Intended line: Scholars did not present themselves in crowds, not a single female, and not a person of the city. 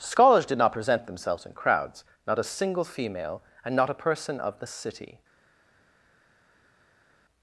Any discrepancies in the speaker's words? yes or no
no